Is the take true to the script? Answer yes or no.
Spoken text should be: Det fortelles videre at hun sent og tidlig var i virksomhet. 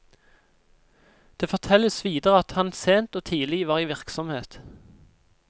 no